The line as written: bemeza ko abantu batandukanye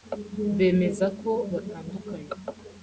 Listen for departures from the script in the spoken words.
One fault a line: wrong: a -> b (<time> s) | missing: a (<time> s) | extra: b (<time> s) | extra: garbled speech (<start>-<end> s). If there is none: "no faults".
missing: abantu (1.3 s)